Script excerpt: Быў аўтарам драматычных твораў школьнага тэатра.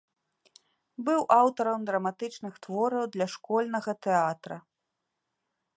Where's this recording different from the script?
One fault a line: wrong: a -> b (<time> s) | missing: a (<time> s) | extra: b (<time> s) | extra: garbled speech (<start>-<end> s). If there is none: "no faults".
extra: для (3.2 s)